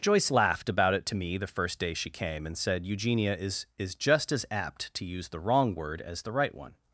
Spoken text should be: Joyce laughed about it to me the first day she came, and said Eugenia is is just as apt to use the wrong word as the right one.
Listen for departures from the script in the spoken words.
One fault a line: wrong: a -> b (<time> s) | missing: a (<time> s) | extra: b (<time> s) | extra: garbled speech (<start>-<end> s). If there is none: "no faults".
no faults